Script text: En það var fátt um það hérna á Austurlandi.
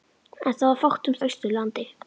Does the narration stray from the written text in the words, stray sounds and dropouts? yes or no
yes